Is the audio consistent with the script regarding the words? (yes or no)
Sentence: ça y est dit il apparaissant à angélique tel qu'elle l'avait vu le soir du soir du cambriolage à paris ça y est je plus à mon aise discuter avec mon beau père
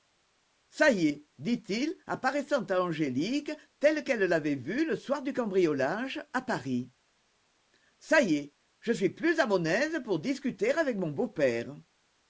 no